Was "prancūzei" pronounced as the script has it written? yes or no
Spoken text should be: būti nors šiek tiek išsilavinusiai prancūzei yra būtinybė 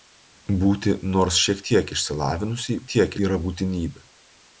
no